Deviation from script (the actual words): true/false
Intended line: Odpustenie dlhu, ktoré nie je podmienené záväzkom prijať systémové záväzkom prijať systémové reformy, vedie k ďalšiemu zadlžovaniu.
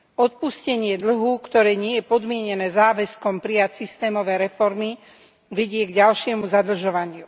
true